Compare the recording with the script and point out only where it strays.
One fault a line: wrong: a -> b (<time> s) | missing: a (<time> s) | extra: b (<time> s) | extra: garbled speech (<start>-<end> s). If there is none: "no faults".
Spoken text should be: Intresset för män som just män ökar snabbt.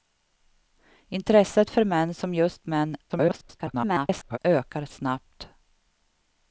extra: garbled speech (3.1-4.4 s)